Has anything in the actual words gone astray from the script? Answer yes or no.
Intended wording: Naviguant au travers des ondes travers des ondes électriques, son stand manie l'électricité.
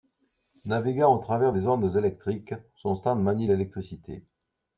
yes